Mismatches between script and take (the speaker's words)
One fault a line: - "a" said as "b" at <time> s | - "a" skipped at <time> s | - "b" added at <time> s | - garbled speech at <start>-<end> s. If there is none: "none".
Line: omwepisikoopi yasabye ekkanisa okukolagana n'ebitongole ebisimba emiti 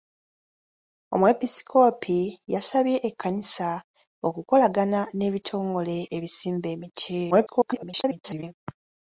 - garbled speech at 7.3-8.4 s